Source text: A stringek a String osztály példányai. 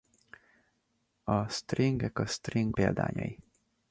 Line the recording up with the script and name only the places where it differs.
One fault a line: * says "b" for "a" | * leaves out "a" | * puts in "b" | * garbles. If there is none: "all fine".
* leaves out "osztály"